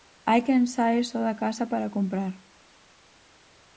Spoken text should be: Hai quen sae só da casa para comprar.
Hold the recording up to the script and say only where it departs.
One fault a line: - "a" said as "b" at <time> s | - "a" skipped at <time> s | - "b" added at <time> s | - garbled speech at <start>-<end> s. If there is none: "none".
none